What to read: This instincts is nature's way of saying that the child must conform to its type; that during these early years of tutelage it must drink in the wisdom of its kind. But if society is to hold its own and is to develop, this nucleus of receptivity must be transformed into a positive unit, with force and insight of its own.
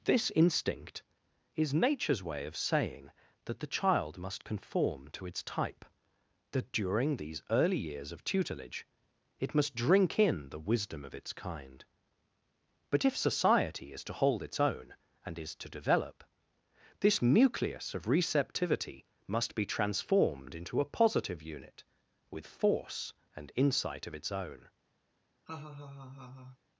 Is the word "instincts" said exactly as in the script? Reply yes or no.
no